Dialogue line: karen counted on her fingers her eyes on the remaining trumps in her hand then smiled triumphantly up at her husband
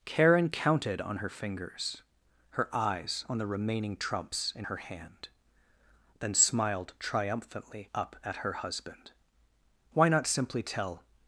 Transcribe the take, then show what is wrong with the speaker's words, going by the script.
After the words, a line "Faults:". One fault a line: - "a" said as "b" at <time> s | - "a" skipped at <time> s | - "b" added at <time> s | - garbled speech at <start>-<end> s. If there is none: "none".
karen counted on her fingers her eyes on the remaining trumps in her hand then smiled triumphantly up at her husband why not simply tell
Faults:
- "why not simply tell" added at 9.9 s